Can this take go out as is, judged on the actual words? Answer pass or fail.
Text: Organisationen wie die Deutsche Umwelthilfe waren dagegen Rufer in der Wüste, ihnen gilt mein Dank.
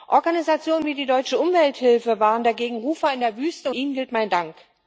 pass